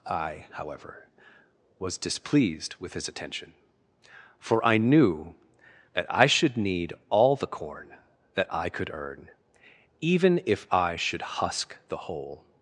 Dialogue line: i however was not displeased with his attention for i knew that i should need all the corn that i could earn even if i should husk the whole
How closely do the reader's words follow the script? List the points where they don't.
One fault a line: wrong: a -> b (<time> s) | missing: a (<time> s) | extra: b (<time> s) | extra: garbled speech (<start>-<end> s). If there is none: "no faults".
missing: not (2.0 s)